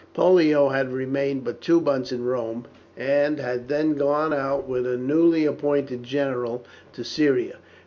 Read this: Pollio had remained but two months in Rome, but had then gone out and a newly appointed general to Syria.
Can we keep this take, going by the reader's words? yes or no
no